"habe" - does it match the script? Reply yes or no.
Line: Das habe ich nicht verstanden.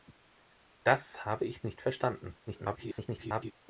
yes